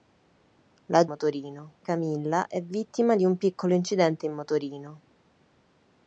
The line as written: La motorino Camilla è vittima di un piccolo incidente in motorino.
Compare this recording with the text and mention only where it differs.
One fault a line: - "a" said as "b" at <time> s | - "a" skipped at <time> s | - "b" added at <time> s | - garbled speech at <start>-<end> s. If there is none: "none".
none